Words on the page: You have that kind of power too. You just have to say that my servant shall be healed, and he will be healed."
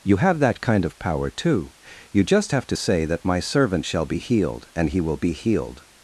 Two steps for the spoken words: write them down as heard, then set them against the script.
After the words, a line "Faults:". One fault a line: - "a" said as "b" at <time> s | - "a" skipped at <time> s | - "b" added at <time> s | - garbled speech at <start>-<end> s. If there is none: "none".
You have that kind of power too. You just have to say that my servant shall be healed, and he will be healed."
Faults:
none